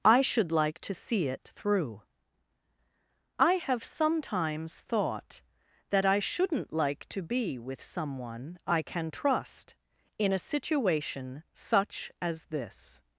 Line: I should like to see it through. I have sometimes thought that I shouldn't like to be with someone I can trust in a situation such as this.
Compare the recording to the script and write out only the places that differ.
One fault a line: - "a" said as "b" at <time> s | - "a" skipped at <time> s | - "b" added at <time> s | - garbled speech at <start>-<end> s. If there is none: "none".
none